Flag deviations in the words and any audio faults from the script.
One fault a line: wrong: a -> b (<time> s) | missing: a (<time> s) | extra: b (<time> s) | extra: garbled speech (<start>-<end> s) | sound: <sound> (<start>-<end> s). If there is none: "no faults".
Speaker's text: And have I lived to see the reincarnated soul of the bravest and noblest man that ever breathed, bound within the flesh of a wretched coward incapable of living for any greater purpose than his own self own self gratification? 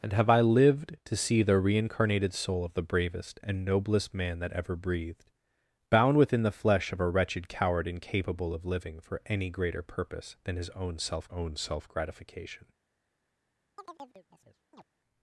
sound: chirp (13.8-14.8 s)